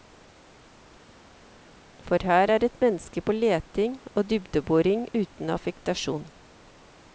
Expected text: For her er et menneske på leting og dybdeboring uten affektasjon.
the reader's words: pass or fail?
pass